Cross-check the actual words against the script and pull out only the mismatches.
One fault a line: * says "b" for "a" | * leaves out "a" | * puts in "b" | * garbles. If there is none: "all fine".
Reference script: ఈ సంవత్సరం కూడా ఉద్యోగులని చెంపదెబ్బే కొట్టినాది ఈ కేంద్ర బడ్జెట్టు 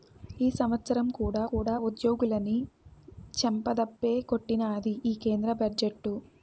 * puts in "కూడా"